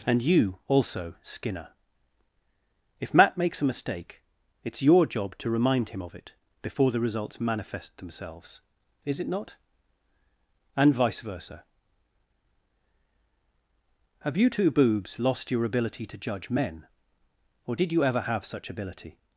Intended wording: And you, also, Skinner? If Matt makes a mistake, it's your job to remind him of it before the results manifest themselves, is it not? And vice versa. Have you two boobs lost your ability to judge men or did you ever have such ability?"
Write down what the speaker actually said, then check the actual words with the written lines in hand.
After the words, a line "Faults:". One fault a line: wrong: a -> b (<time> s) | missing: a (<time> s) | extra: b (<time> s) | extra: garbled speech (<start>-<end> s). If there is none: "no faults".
And you, also, Skinner? If Matt makes a mistake, it's your job to remind him of it before the results manifest themselves, is it not? And vice versa. Have you two boobs lost your ability to judge men or did you ever have such ability?"
Faults:
no faults